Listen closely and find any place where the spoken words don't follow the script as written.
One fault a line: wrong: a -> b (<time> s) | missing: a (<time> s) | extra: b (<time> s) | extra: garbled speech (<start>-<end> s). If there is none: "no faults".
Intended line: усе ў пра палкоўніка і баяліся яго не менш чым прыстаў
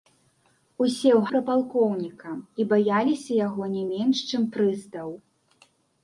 no faults